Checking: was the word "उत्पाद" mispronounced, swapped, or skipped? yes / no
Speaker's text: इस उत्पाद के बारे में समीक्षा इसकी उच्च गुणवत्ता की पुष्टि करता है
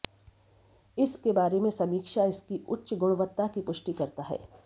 yes